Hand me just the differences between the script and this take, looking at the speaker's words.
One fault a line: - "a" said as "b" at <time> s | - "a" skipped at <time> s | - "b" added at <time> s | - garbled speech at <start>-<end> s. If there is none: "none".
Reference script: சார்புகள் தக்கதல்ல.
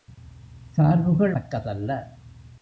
none